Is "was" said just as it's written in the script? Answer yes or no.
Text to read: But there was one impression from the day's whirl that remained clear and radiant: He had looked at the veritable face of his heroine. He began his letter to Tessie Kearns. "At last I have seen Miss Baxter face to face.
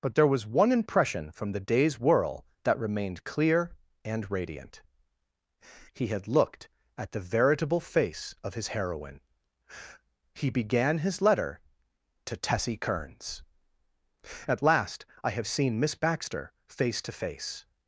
yes